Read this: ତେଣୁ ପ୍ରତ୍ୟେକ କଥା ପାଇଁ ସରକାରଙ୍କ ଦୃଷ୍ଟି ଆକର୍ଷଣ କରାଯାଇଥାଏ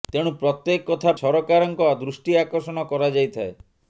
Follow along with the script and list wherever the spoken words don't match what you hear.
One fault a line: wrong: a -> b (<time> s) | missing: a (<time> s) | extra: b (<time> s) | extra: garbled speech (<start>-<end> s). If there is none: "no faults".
missing: ପାଇଁ (1.1 s)